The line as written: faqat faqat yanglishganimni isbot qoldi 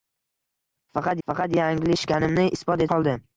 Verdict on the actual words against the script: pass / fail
pass